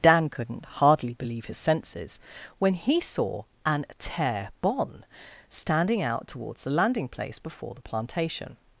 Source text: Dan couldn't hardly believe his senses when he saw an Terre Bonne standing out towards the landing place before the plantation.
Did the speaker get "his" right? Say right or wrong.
right